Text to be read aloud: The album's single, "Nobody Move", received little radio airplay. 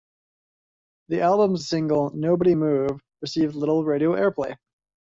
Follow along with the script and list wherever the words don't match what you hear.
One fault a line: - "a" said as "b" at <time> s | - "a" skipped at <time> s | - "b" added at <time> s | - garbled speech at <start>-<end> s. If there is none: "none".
none